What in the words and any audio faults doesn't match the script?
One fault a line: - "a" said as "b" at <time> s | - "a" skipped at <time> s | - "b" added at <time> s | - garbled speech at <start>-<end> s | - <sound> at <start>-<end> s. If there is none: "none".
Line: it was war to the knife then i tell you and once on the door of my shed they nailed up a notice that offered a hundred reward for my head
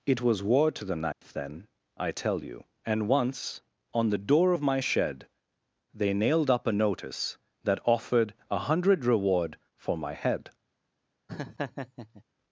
- dropout at 1.1-1.2 s
- laugh at 11.3-12.2 s